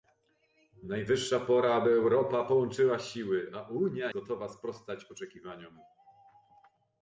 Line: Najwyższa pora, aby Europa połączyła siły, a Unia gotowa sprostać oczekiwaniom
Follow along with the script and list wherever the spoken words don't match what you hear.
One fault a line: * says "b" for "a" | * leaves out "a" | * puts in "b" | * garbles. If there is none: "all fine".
all fine